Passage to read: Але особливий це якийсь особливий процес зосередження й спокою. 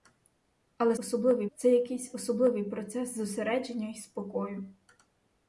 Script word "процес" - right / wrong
right